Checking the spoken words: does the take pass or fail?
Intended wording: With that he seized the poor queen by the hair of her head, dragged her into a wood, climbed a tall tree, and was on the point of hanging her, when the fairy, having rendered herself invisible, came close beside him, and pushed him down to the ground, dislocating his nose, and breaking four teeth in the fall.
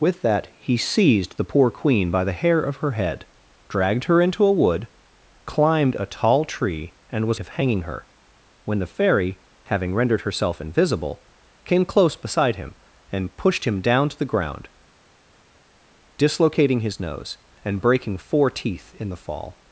fail